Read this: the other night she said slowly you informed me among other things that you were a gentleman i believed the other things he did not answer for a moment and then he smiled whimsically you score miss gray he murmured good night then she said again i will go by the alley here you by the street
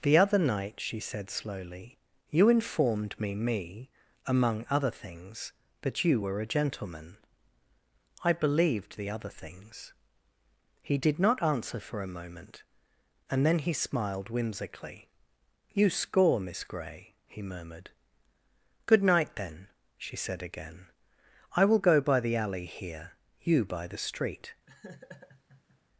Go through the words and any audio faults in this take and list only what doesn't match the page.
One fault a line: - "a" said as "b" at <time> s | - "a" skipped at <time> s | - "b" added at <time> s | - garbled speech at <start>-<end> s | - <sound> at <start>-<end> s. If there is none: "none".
- "me" added at 3.4 s
- laugh at 24.7-25.8 s